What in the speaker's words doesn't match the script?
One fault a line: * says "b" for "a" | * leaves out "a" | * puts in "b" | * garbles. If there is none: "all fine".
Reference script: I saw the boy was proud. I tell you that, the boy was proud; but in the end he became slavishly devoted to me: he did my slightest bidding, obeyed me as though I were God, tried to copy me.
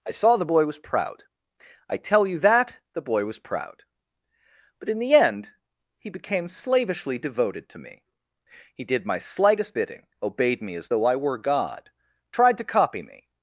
all fine